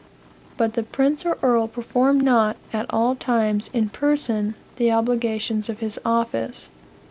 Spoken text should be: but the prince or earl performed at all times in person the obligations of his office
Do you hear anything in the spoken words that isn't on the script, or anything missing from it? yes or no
yes